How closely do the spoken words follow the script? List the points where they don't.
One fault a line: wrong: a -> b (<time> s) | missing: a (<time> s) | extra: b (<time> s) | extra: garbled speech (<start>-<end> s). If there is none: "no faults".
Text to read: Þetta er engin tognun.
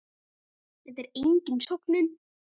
no faults